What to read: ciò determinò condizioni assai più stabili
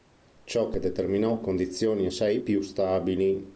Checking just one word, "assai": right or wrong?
right